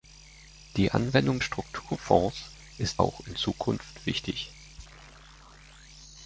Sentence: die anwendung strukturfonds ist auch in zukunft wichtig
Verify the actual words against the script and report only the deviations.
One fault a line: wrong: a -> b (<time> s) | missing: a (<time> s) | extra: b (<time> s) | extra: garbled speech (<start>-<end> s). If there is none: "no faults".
no faults